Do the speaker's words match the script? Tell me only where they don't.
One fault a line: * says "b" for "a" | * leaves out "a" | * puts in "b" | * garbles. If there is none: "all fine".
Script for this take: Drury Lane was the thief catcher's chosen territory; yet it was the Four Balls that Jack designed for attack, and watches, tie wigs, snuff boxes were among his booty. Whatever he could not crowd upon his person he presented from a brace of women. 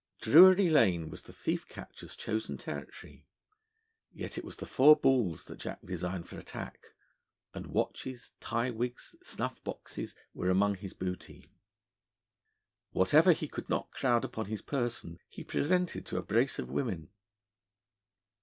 * says "to" for "from"